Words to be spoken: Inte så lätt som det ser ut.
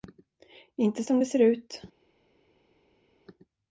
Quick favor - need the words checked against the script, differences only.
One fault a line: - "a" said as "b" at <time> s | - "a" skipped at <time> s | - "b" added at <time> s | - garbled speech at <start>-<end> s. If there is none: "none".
- "så lätt" skipped at 1.0 s